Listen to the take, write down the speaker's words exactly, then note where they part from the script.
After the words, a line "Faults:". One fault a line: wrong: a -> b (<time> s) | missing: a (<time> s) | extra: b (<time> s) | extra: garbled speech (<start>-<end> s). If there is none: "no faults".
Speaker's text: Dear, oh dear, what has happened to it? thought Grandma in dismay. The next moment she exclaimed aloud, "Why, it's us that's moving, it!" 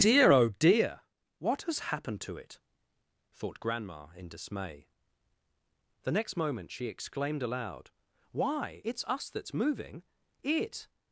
Dear, oh dear, what has happened to it? thought Grandma in dismay. The next moment she exclaimed aloud, "Why, it's us that's moving, it!"
Faults:
no faults